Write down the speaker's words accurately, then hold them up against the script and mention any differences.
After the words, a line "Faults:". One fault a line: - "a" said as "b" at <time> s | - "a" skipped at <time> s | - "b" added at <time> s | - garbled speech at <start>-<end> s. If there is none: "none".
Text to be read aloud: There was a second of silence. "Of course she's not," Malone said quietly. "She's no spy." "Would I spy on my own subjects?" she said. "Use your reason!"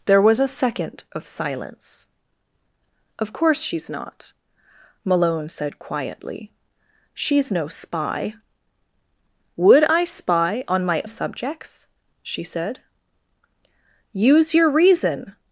There was a second of silence. "Of course she's not," Malone said quietly. "She's no spy." "Would I spy on my subjects?" she said. "Use your reason!"
Faults:
- "own" skipped at 11.0 s